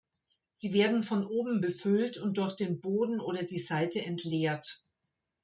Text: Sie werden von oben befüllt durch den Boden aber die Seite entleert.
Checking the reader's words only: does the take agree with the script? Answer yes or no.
no